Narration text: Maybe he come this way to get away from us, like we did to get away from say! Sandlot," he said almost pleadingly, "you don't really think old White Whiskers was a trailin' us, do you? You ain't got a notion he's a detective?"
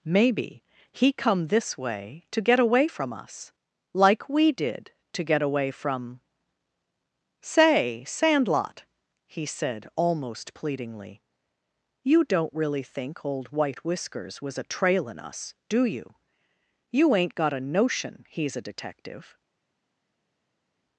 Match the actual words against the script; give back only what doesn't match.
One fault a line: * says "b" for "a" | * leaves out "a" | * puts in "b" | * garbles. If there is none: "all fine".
all fine